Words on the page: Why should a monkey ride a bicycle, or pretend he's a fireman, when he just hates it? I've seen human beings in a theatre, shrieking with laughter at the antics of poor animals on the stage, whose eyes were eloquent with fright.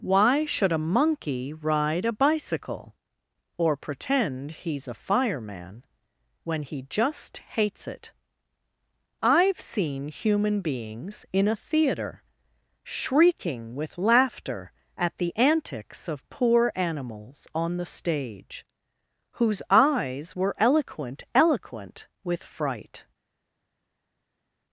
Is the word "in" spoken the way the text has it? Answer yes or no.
yes